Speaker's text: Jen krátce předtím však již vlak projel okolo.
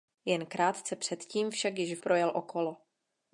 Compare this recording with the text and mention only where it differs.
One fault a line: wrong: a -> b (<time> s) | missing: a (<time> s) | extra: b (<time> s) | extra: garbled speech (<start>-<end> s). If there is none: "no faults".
missing: vlak (2.0 s)